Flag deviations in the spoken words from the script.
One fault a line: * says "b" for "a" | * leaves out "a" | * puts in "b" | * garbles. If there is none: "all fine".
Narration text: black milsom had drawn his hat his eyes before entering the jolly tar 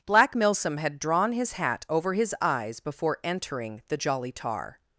* puts in "over"